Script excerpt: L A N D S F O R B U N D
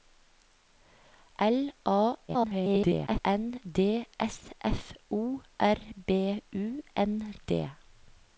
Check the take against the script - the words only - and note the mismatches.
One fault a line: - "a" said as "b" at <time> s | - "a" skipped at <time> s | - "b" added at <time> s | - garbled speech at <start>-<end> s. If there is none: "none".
- garbled speech at 2.3-3.2 s